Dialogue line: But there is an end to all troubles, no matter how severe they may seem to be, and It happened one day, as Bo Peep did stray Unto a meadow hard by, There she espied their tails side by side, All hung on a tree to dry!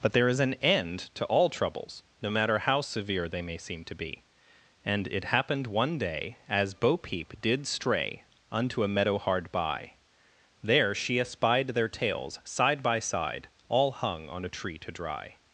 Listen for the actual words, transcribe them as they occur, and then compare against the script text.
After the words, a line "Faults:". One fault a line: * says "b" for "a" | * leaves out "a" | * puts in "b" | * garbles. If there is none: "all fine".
But there is an end to all troubles, no matter how severe they may seem to be, and It happened one day, as Bo Peep did stray Unto a meadow hard by, There she espied their tails side by side, All hung on a tree to dry!
Faults:
all fine